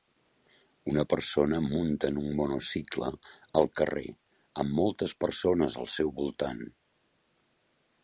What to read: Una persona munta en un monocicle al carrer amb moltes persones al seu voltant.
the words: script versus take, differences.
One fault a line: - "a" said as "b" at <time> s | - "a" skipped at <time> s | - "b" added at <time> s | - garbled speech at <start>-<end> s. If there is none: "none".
none